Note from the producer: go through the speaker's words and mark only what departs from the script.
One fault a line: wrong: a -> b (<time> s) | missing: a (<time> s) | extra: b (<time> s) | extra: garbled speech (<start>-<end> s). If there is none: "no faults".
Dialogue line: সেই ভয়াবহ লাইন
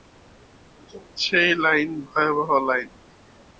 extra: লাইন (1.6 s)